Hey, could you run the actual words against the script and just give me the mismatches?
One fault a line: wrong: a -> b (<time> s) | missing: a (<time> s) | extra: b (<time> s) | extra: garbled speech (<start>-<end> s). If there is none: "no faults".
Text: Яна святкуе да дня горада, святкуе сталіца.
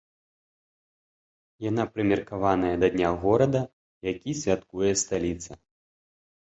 wrong: святкуе -> прымеркаваная (2.0 s)
extra: які (4.1 s)